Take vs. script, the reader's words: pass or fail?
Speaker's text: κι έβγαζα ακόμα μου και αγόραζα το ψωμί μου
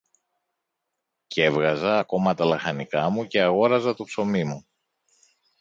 fail